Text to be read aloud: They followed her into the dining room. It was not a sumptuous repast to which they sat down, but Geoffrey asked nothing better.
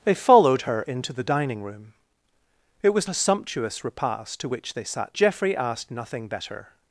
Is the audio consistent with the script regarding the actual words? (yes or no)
no